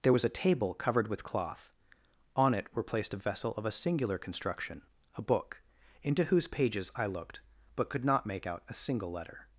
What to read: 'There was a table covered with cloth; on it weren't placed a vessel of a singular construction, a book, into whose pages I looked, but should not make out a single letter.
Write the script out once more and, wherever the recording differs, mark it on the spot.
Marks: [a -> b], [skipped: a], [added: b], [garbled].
'There was a table covered with cloth; on it [weren't -> were] placed a vessel of a singular construction, a book, into whose pages I looked, but [should -> could] not make out a single letter.